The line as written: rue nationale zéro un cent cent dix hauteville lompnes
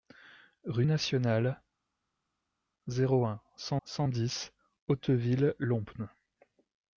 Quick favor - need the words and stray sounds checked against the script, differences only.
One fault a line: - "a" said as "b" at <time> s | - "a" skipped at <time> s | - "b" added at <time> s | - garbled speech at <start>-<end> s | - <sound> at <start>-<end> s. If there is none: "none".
none